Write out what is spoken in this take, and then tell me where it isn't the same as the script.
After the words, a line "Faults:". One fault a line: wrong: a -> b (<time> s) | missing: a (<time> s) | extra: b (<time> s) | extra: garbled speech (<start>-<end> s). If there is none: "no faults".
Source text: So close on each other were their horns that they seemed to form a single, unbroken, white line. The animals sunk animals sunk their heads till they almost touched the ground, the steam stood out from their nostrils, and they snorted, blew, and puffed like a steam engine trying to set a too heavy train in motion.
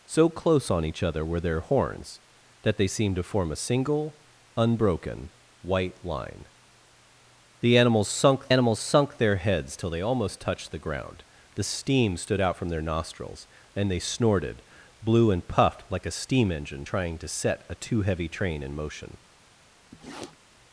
So close on each other were their horns that they seemed to form a single, unbroken, white line. The animals sunk animals sunk their heads till they almost touched the ground, the steam stood out from their nostrils, and they snorted, blew, and puffed like a steam engine trying to set a too heavy train in motion.
Faults:
no faults